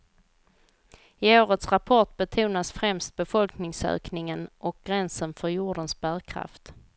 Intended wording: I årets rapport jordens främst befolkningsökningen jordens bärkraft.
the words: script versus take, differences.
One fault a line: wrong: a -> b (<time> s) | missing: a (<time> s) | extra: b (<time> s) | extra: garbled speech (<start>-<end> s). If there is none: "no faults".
wrong: jordens -> betonas (2.2 s)
extra: och gränsen för (4.6 s)